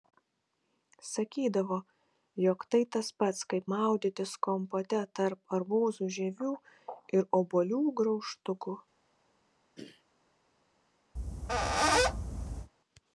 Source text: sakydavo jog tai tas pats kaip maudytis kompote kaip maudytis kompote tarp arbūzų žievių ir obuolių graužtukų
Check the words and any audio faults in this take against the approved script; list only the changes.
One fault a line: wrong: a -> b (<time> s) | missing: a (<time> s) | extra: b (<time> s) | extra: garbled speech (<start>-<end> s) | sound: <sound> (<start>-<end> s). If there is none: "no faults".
missing: kaip maudytis kompote (5.0 s)
sound: throat clearing (9.8-10.0 s)
sound: squeak (11.2-12.7 s)